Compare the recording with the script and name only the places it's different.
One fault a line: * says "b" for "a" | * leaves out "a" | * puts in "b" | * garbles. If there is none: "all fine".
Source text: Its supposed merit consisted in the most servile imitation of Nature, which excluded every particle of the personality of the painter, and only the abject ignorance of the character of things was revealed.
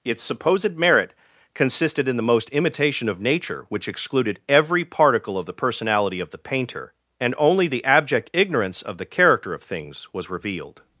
* leaves out "servile"